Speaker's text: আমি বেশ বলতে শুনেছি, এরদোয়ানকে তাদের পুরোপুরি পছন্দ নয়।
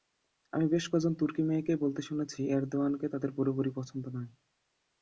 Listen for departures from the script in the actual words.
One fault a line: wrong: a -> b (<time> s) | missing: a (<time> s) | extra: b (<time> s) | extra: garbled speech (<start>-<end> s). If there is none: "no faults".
extra: কজন তুর্কি মেয়েকেই (0.9 s)